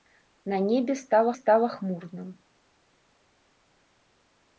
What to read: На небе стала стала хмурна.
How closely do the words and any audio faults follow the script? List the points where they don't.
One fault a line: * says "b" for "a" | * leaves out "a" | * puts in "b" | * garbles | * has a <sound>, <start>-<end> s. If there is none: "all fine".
all fine